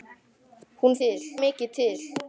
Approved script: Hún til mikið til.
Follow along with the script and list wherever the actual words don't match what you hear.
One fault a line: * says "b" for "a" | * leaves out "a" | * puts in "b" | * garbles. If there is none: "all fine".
all fine